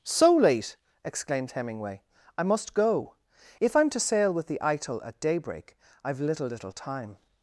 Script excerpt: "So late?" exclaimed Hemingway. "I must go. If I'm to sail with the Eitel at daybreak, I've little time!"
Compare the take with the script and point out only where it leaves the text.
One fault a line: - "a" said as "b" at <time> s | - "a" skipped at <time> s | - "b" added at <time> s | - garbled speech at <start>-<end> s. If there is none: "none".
- "little" added at 6.5 s